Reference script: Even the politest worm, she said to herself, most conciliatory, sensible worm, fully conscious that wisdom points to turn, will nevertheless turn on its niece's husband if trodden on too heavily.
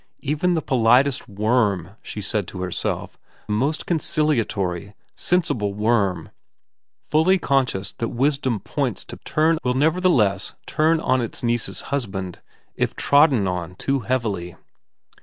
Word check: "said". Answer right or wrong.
right